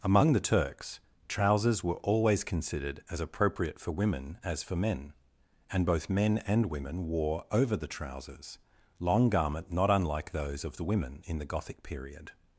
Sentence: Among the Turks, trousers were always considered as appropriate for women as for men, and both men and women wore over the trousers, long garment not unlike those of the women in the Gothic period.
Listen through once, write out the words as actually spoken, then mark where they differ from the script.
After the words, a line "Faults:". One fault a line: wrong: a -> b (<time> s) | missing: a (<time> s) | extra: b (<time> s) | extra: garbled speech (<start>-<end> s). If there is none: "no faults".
Among the Turks, trousers were always considered as appropriate for women as for men, and both men and women wore over the trousers, long garment not unlike those of the women in the Gothic period.
Faults:
no faults